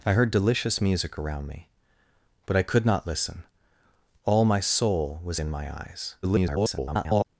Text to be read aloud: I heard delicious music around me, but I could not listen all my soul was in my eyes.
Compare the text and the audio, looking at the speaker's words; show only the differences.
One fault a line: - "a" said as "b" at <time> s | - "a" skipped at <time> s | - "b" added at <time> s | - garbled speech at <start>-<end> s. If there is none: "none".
- garbled speech at 6.2-7.2 s